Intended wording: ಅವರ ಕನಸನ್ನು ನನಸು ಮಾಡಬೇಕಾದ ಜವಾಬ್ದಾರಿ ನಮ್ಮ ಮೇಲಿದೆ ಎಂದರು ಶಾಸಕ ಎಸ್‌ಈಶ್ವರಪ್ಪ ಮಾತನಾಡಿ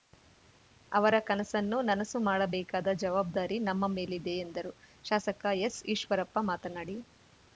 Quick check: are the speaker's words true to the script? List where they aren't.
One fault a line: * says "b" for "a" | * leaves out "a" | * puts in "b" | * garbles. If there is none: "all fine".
all fine